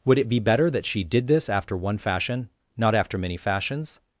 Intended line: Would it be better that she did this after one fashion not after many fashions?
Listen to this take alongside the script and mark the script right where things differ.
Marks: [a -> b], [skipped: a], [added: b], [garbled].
Would it be better that she did this after one fashion not after many fashions?